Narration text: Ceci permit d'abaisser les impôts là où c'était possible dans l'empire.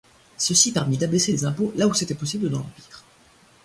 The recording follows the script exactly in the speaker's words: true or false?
true